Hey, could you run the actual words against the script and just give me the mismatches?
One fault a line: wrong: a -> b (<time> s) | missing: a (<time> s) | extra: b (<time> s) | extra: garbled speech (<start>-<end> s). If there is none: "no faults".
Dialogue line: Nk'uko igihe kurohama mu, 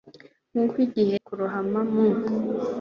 no faults